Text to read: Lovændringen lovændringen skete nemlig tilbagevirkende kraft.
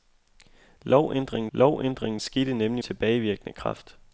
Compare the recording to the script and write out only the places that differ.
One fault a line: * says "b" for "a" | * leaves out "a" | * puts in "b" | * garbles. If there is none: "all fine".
all fine